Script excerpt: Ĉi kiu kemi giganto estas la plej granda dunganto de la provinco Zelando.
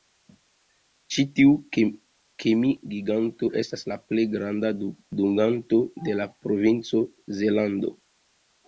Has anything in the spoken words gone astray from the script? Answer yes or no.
yes